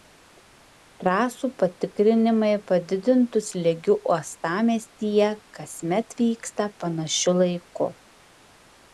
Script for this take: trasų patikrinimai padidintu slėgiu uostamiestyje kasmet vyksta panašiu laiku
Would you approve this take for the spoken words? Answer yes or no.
yes